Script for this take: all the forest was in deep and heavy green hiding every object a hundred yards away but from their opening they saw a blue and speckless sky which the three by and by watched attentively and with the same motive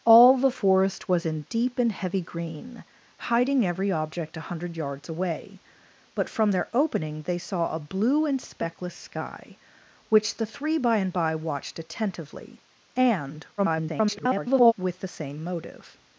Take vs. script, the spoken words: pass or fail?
fail